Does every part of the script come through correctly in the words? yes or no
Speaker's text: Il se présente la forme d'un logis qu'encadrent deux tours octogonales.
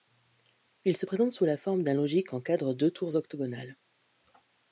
no